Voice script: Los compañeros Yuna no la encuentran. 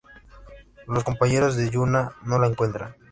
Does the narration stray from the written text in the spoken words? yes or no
yes